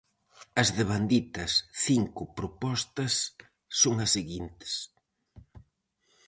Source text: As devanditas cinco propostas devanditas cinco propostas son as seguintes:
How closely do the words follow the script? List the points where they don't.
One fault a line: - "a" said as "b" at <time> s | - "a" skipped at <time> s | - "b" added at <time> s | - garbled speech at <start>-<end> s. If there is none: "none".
- "devanditas cinco propostas" skipped at 3.1 s